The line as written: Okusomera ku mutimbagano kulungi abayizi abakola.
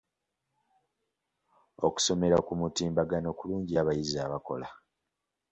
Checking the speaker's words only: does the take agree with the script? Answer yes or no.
yes